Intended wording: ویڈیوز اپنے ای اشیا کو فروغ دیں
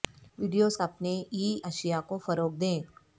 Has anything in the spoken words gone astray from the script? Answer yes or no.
no